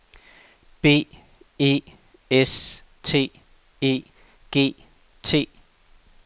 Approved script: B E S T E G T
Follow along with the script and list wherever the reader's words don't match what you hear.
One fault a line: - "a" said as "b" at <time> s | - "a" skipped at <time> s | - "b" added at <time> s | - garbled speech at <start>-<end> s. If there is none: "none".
none